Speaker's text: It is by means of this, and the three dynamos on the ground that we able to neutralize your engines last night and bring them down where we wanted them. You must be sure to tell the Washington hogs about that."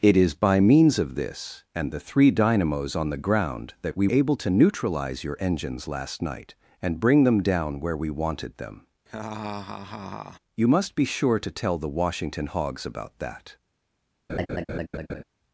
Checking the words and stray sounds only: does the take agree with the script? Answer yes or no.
no